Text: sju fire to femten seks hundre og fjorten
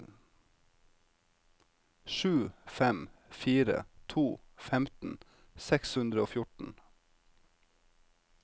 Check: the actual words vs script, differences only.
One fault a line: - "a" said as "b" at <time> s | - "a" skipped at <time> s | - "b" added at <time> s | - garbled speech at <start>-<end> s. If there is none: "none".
- "fem" added at 2.6 s